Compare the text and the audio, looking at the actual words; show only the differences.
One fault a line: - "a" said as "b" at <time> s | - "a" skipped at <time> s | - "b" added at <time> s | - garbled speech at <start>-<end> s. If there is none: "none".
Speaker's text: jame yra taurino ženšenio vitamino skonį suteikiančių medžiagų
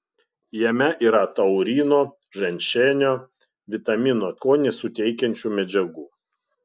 none